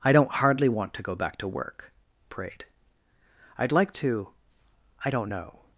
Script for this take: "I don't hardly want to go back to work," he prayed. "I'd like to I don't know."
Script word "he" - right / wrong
wrong